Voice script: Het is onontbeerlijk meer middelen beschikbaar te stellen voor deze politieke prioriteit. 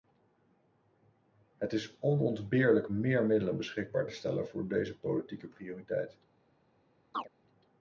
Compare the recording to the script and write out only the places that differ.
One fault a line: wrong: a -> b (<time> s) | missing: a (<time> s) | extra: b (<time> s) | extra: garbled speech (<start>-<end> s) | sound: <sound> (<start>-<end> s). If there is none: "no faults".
sound: chirp (7.1-7.3 s)